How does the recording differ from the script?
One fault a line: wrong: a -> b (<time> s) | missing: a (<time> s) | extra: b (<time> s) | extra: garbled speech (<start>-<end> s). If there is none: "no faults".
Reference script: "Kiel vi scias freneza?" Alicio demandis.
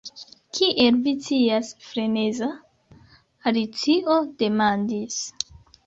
no faults